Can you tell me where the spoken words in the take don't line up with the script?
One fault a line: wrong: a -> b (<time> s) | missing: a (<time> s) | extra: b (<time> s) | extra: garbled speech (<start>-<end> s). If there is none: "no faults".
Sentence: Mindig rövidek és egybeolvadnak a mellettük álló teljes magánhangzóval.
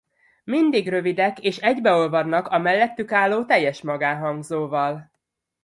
no faults